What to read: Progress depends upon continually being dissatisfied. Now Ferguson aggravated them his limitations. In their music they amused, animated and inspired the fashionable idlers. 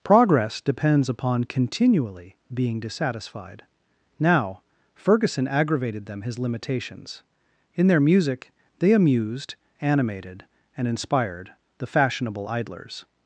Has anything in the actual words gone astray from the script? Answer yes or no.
no